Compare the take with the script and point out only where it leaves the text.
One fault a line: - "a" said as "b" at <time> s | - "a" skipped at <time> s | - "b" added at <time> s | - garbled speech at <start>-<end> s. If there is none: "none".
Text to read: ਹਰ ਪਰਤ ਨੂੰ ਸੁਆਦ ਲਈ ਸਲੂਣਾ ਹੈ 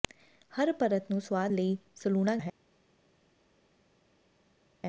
none